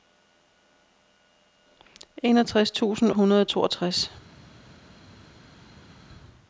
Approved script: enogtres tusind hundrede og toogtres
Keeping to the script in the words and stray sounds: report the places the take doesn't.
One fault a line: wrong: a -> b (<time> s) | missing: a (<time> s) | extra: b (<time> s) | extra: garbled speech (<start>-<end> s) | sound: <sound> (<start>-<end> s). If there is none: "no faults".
no faults